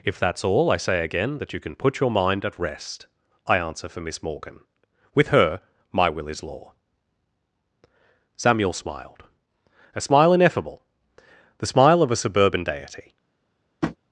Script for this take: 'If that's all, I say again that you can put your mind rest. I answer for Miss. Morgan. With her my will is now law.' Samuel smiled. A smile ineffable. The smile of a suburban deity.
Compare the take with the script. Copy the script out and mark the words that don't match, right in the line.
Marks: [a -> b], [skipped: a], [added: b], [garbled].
'If that's all, I say again that you can put your mind [added: at] rest. I answer for Miss. Morgan. With her my will is [skipped: now] law.' Samuel smiled. A smile ineffable. The smile of a suburban deity.